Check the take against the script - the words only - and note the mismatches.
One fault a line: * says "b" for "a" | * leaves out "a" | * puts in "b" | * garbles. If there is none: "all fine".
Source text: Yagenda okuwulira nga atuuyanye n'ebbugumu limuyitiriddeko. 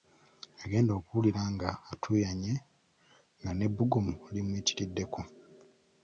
* puts in "nga"